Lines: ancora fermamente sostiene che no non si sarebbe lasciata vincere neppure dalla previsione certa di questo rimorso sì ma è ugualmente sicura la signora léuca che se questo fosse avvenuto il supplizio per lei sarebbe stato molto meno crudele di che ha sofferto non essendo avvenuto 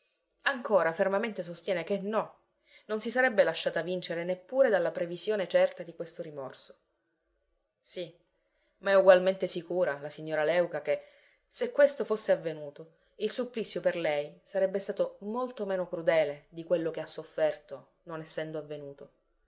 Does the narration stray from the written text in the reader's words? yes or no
yes